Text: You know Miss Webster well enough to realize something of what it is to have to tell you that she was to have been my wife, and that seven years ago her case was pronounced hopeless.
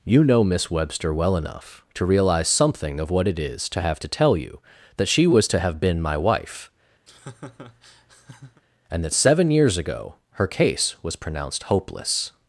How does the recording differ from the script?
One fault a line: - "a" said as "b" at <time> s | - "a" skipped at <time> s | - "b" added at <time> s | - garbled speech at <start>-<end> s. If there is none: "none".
none